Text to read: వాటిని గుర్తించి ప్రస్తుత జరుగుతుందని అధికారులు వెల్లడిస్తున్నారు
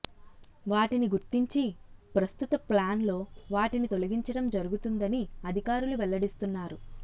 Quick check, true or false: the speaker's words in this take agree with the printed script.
false